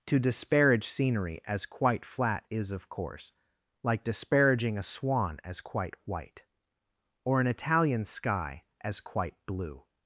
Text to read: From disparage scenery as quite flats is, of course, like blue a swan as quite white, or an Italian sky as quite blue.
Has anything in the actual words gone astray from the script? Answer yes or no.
yes